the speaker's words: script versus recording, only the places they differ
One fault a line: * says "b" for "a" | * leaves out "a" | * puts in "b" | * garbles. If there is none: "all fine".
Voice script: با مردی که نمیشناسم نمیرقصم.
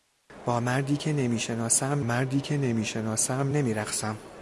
* puts in "مردی که نمیشناسم"